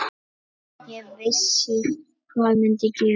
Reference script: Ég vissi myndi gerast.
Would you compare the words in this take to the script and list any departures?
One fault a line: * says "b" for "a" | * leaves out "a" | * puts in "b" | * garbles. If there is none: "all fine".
* puts in "hvað"